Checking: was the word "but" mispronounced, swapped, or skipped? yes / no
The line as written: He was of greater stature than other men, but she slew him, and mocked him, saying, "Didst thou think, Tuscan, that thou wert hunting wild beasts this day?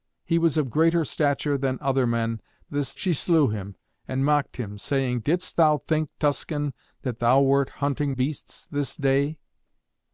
yes